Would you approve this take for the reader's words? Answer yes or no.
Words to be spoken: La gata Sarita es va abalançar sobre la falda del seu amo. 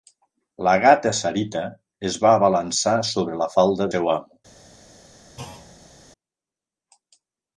no